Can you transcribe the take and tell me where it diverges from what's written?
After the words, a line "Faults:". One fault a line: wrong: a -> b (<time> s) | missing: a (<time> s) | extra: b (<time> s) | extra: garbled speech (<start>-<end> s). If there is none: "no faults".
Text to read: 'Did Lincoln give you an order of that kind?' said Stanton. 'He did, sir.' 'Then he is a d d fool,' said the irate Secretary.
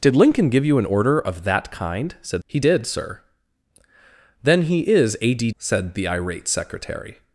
'Did Lincoln give you an order of that kind?' said. 'He did, sir.' 'Then he is a d,' said the irate Secretary.
Faults:
missing: Stanton (2.4 s)
missing: d fool (5.5 s)